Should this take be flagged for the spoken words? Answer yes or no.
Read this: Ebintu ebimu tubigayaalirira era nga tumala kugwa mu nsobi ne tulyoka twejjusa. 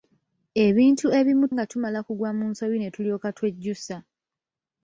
yes